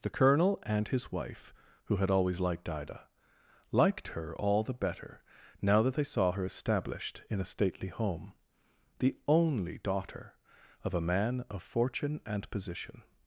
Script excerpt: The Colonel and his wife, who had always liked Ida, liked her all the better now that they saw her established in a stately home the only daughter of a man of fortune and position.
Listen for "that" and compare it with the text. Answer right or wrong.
right